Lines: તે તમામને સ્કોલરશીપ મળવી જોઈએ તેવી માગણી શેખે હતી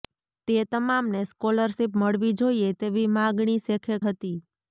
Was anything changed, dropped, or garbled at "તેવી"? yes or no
no